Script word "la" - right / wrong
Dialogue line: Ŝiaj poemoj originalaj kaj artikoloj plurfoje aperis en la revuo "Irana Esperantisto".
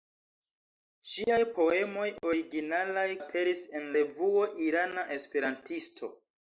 wrong